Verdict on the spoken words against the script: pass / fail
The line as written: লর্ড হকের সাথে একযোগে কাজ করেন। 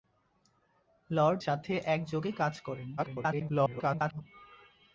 fail